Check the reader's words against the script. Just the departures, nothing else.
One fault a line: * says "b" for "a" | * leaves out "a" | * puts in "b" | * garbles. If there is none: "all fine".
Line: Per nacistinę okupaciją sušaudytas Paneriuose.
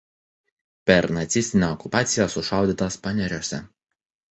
all fine